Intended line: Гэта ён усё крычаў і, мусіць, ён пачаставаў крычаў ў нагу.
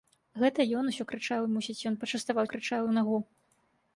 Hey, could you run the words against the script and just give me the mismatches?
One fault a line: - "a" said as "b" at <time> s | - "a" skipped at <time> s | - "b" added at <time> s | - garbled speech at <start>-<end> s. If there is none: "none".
none